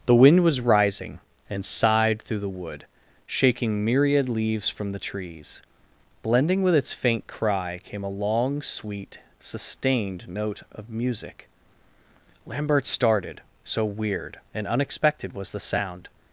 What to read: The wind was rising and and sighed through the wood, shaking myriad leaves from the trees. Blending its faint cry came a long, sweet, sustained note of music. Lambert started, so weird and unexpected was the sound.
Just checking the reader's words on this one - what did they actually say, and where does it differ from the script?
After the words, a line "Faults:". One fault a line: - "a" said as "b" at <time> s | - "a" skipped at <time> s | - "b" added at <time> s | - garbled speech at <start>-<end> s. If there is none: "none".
The wind was rising and sighed through the wood, shaking myriad leaves from the trees. Blending with its faint cry came a long, sweet, sustained note of music. Lambert started, so weird and unexpected was the sound.
Faults:
- "and" skipped at 1.6 s
- "with" added at 6.6 s